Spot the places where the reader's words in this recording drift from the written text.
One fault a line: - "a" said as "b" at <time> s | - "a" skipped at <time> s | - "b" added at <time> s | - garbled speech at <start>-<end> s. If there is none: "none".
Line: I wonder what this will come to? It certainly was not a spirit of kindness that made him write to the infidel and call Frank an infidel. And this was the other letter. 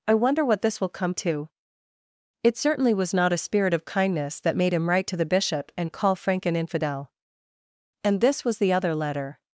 - "infidel" said as "bishop" at 5.3 s